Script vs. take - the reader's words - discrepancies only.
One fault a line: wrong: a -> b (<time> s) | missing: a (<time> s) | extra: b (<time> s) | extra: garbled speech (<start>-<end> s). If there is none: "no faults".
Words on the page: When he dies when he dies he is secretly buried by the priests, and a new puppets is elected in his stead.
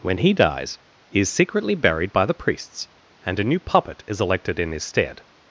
missing: when (0.8 s)
missing: dies he (1.2 s)
wrong: puppets -> puppet (3.6 s)